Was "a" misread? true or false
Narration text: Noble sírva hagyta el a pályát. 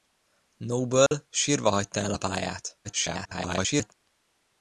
false